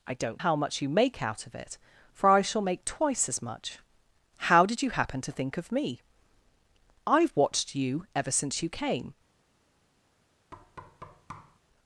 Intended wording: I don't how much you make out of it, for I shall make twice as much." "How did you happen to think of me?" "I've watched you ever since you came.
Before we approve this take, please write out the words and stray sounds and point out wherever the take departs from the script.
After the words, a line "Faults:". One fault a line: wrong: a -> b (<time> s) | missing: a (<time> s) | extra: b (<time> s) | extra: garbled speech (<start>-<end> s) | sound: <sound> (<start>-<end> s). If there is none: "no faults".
I don't how much you make out of it, for I shall make twice as much." "How did you happen to think of me?" "I've watched you ever since you came.
Faults:
sound: thud (10.5-11.6 s)